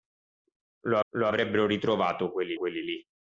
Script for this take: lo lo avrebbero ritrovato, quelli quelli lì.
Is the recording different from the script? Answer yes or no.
no